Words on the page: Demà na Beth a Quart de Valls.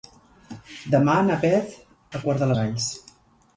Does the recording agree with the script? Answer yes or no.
yes